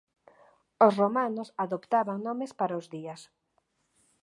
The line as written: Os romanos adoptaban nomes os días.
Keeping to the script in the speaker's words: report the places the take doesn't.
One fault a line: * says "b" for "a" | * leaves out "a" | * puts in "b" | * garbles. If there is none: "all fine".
* puts in "para"